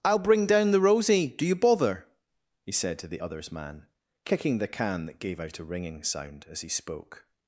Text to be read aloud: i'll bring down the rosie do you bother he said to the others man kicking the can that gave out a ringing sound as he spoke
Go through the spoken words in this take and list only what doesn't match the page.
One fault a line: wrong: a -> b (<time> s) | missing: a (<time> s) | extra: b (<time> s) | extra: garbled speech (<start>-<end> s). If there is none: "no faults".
no faults